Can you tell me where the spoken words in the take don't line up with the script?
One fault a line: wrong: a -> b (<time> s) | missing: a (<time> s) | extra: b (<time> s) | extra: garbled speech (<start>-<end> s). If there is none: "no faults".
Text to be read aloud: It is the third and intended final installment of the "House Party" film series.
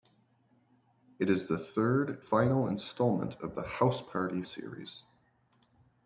missing: and intended (2.2 s)
missing: film (4.4 s)